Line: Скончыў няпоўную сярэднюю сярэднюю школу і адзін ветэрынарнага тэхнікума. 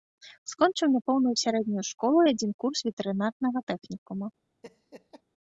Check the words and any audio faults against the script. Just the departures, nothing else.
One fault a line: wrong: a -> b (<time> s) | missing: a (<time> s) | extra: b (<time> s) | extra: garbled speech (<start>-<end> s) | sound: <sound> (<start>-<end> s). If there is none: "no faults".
missing: сярэднюю (1.8 s)
extra: курс (2.6 s)
sound: laugh (4.6-5.2 s)